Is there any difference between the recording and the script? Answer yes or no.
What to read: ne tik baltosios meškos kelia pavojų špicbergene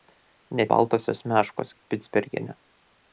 yes